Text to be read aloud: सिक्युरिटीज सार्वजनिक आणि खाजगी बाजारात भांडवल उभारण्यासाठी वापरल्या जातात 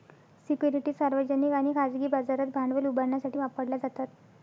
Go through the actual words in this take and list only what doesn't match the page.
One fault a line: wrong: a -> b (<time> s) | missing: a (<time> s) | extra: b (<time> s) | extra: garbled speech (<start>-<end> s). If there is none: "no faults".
no faults